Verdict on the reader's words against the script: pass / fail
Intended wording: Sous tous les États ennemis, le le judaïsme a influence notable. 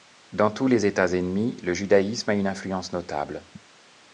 fail